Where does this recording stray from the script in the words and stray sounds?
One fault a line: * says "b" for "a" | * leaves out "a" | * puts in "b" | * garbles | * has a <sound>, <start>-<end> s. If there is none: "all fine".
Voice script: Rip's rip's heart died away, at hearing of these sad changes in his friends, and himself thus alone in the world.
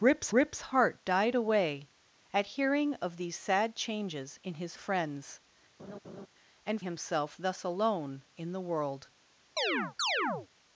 * has a laugh, 5.8-6.3 s
* has a chirp, 9.6-10.5 s